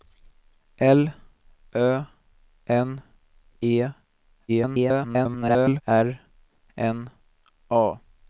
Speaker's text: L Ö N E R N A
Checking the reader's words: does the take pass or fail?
fail